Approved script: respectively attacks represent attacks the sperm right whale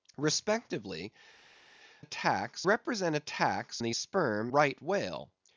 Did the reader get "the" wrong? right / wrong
right